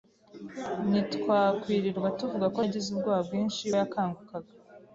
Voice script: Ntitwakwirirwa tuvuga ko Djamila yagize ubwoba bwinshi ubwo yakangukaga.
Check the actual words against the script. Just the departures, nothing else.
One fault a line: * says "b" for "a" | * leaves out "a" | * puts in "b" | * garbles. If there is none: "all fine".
* leaves out "Djamila"
* leaves out "ubwo"